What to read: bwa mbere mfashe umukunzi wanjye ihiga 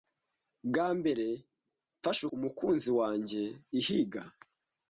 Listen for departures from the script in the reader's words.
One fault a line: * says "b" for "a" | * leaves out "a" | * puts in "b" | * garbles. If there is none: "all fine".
all fine